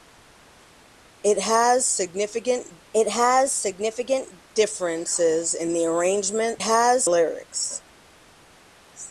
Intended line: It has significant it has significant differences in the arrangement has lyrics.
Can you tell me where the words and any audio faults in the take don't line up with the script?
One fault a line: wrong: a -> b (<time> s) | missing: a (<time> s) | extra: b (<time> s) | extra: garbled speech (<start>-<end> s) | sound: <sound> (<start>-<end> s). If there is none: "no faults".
no faults